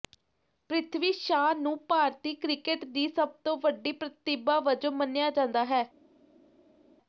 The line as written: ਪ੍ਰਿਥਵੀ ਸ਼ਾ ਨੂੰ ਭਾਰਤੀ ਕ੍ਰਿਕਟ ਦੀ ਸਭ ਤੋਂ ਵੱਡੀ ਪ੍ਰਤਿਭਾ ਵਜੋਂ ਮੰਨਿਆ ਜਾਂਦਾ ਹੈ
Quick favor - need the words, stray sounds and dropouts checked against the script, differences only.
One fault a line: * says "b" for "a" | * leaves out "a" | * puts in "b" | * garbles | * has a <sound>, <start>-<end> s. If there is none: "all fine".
all fine